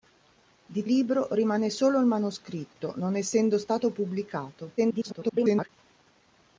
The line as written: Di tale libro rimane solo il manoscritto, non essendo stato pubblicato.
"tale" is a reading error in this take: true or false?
true